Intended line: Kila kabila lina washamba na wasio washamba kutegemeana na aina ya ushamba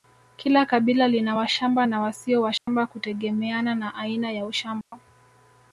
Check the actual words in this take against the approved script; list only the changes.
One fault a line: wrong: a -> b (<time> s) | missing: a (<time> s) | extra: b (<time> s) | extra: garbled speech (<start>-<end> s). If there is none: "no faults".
no faults